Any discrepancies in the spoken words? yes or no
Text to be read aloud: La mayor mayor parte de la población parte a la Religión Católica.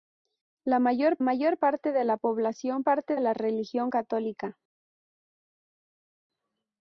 no